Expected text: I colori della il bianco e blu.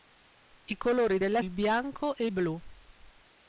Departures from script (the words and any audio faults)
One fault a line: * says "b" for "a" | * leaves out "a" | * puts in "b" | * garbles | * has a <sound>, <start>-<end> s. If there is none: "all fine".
all fine